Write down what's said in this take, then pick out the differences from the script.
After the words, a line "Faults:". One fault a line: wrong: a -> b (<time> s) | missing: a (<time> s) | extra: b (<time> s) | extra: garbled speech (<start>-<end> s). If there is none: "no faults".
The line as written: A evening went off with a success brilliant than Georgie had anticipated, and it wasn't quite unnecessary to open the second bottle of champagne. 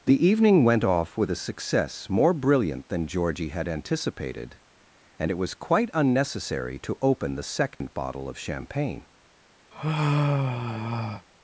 The evening went off with a success more brilliant than Georgie had anticipated, and it was quite unnecessary to open the second bottle of champagne.
Faults:
wrong: A -> The (0.1 s)
extra: more (2.1 s)
wrong: wasn't -> was (5.4 s)